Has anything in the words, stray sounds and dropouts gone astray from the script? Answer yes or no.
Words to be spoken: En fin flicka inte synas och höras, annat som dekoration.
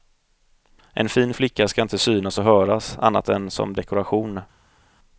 yes